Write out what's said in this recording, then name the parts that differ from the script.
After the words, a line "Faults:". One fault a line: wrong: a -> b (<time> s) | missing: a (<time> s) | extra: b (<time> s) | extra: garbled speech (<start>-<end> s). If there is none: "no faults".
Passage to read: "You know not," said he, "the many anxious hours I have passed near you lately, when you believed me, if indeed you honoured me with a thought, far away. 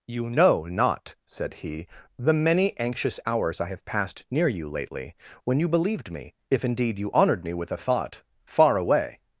"You know not," said he, "the many anxious hours I have passed near you lately, when you believed me, if indeed you honoured me with a thought, far away.
Faults:
no faults